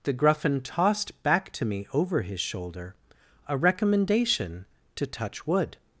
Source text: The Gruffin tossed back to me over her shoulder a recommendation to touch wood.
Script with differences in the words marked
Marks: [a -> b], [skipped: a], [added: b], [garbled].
The Gruffin tossed back to me over [her -> his] shoulder a recommendation to touch wood.